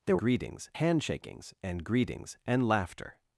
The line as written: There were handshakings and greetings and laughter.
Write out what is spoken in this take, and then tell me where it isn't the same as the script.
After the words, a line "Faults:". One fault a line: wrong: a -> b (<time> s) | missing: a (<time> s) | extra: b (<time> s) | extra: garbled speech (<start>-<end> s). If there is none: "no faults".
There greetings handshakings and greetings and laughter.
Faults:
wrong: were -> greetings (0.2 s)